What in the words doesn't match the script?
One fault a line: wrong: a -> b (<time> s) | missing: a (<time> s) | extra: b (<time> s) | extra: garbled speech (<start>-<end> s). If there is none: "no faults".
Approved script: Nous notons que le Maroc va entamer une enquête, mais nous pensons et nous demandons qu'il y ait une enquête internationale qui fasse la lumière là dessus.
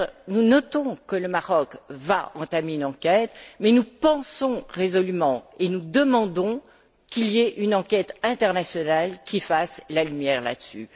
extra: résolument (4.7 s)